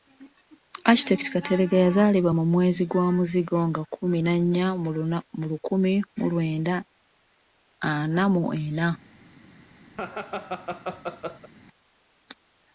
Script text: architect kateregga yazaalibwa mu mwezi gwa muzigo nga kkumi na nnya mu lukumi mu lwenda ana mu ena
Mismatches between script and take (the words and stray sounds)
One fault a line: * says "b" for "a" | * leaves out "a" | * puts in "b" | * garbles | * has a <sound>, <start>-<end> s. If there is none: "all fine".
* has a laugh, 9.9-11.5 s